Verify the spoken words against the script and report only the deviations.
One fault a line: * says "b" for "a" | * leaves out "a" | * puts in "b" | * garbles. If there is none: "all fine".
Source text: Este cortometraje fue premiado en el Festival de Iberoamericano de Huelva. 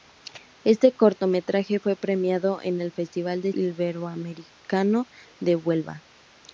all fine